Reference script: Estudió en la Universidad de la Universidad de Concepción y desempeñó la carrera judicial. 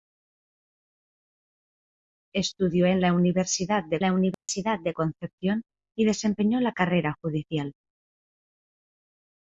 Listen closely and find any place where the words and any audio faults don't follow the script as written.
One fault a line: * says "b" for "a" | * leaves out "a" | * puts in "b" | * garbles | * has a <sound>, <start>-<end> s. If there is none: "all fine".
* has a dropout, 4.3-4.5 s